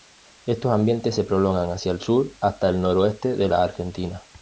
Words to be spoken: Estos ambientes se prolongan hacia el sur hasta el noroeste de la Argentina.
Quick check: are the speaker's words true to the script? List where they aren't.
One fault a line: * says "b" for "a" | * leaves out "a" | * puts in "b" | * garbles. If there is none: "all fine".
all fine